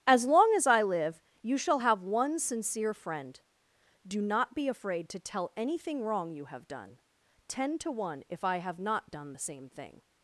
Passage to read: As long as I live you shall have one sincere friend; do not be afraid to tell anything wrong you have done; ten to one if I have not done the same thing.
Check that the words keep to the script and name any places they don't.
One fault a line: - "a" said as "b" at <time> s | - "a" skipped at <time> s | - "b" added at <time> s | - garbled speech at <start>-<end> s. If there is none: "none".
none